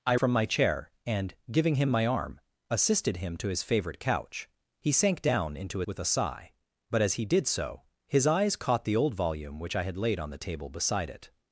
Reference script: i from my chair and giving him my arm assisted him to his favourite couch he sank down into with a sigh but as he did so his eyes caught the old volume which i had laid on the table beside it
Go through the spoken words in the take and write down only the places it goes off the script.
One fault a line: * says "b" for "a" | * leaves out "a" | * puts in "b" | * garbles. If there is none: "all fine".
all fine